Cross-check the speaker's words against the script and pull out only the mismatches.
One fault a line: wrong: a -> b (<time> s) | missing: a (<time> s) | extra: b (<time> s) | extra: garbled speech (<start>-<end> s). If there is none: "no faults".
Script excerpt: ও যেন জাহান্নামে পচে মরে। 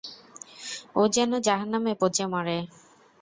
no faults